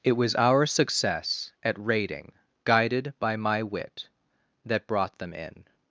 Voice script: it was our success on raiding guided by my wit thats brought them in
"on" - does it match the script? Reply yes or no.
no